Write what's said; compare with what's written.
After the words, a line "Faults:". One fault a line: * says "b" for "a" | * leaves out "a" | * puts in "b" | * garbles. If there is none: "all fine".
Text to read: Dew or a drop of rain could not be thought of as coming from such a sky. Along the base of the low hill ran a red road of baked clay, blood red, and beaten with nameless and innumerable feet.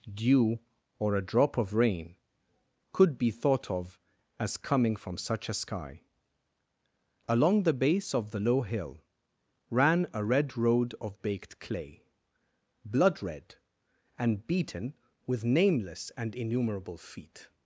Dew or a drop of rain could be thought of as coming from such a sky. Along the base of the low hill ran a red road of baked clay, blood red, and beaten with nameless and innumerable feet.
Faults:
* leaves out "not"